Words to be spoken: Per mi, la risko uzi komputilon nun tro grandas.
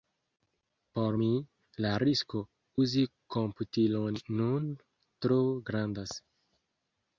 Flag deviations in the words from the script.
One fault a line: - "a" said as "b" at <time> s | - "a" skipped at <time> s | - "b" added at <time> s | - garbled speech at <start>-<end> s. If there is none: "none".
- "Per" said as "Por" at 1.0 s